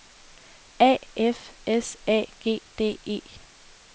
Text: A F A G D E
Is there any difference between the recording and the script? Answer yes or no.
yes